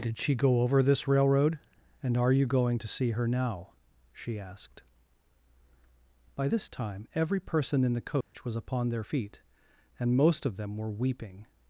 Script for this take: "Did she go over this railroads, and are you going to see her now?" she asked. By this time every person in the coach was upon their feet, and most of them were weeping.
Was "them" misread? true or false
false